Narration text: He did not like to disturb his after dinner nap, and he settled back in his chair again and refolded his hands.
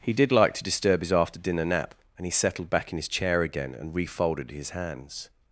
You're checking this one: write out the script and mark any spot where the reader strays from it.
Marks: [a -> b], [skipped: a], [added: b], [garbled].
He did [skipped: not] like to disturb his after dinner nap, and he settled back in his chair again and refolded his hands.